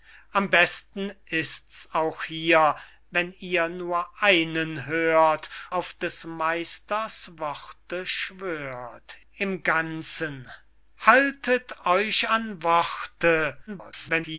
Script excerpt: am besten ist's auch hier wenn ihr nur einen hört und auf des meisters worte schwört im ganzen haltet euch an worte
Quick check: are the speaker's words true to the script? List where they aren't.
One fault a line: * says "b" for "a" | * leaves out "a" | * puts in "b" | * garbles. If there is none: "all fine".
* leaves out "und"
* garbles